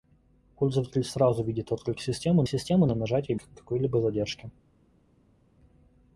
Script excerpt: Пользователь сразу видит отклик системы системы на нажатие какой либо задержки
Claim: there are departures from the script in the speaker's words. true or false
false